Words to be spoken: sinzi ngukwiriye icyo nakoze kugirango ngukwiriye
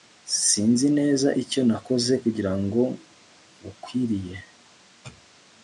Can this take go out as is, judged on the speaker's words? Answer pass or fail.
fail